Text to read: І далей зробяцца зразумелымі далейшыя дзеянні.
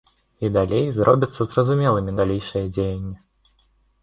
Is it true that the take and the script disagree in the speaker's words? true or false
false